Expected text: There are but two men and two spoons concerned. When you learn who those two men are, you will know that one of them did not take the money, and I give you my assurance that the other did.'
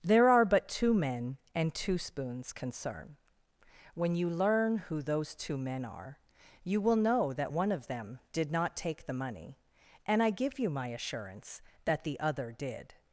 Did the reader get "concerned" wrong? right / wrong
wrong